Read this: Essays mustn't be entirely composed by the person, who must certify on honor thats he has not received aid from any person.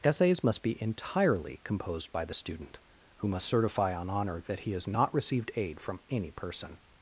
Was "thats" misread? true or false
true